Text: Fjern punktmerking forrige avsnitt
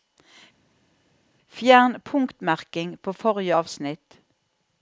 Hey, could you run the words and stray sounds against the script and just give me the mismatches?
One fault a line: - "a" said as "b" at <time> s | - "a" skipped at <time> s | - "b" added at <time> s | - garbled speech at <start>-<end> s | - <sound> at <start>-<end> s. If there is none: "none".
- "på" added at 3.0 s